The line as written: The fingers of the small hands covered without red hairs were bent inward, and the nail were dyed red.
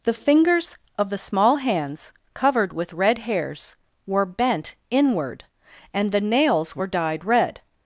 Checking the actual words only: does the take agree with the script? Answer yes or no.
no